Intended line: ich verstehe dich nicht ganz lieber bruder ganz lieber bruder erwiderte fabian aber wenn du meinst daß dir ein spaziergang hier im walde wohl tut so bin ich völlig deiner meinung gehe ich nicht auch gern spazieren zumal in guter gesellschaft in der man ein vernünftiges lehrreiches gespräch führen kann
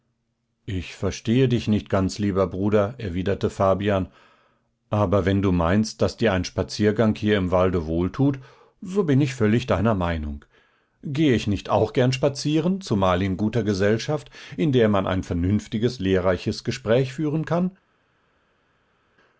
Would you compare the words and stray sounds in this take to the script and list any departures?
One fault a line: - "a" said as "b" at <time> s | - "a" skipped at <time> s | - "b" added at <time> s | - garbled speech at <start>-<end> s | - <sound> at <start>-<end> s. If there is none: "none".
- "ganz lieber bruder" skipped at 3.0 s